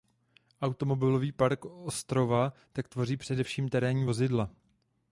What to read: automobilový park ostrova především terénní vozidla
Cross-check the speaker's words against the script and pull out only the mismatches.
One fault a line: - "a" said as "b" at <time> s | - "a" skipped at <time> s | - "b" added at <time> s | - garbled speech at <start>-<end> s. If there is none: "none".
- "tak tvoří" added at 2.7 s